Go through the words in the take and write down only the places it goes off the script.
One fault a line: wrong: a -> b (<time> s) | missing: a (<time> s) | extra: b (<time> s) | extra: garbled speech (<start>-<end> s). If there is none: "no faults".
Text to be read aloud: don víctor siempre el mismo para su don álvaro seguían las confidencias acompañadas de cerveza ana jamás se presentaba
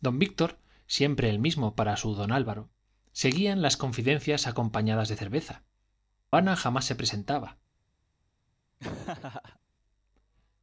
no faults